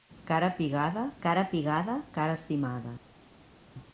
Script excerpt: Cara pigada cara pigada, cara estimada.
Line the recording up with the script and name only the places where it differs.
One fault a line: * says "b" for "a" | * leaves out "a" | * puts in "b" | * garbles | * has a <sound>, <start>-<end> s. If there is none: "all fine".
all fine